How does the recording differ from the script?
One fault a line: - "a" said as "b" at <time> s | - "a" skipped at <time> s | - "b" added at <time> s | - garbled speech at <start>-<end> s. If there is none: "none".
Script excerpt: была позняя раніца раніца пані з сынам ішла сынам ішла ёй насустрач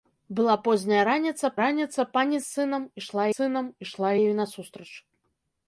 none